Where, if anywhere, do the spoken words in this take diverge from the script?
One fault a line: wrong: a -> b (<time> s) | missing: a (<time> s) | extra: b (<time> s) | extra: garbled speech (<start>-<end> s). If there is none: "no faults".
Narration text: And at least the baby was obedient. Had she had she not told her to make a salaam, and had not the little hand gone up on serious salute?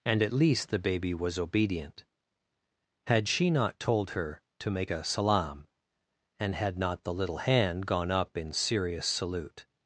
missing: had she (3.5 s)
wrong: on -> in (8.4 s)